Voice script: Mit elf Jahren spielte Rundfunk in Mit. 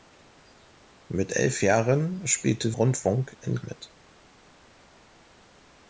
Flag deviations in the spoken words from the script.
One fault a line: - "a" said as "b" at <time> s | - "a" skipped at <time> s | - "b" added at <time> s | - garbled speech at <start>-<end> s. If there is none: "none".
none